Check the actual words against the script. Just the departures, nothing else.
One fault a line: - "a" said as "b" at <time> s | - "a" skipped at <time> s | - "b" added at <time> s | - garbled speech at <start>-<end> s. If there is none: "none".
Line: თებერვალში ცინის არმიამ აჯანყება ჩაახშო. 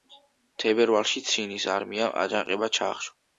none